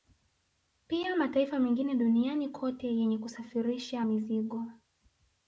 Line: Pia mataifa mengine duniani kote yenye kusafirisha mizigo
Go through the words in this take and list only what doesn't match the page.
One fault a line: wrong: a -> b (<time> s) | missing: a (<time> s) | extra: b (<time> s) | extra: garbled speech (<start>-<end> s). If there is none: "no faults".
no faults